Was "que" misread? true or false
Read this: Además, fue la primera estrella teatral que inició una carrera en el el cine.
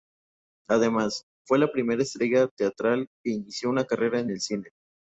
false